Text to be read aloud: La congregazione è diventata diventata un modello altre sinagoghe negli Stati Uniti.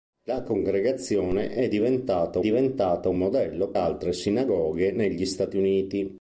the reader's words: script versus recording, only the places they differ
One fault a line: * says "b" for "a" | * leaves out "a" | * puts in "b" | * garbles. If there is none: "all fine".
all fine